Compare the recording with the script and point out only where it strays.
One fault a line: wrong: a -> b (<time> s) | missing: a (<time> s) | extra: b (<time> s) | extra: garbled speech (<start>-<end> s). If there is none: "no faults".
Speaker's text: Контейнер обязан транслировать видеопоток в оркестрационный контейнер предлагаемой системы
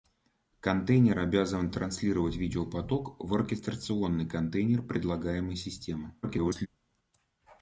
extra: garbled speech (6.2-6.7 s)